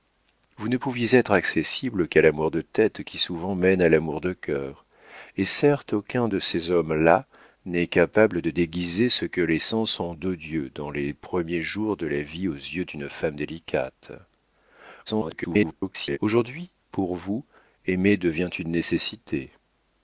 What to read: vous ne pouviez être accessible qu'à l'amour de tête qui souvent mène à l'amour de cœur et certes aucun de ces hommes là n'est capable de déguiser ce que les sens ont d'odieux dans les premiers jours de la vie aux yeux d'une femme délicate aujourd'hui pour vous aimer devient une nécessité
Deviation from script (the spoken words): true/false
true